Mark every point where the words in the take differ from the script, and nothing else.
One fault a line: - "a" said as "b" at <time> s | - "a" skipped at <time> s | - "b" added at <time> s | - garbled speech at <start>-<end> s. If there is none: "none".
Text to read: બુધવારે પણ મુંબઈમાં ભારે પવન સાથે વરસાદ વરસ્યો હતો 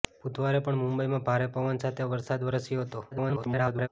- garbled speech at 3.1-3.9 s